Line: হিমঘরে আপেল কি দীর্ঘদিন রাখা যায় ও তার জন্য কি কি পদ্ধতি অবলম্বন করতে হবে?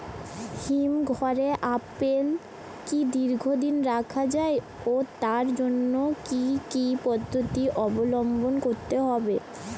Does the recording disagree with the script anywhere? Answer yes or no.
no